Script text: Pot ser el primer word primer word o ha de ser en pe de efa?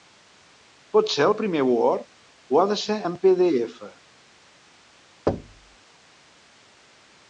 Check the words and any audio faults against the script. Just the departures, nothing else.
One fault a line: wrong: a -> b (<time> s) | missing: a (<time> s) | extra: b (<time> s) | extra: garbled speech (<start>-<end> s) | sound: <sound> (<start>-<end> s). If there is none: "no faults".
missing: primer word (2.0 s)
sound: thud (5.3-5.8 s)